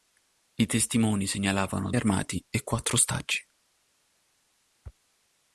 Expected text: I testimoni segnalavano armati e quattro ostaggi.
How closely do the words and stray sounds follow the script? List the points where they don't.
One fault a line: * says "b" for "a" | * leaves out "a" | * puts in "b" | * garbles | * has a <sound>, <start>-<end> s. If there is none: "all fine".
all fine